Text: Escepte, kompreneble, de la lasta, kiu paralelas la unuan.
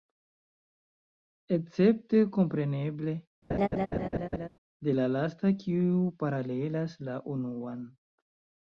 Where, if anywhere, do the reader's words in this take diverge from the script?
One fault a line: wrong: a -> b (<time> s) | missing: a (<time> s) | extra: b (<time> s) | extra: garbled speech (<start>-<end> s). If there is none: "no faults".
no faults